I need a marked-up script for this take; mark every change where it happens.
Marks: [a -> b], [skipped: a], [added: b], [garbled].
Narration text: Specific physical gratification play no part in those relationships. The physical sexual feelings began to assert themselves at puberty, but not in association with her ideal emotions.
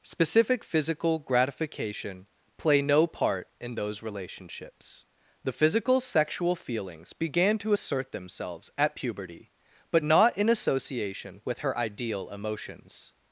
Specific physical gratification play no part in those relationships. The physical sexual feelings began to assert themselves at puberty, but not in association with her ideal emotions.